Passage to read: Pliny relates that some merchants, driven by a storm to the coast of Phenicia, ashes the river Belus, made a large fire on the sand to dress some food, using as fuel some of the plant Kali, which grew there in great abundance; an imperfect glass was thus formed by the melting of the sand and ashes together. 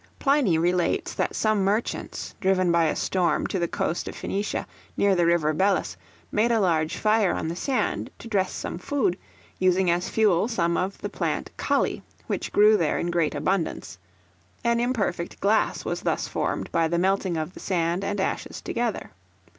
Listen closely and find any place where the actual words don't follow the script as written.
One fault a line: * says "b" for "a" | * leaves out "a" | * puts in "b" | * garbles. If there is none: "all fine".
* says "near" for "ashes"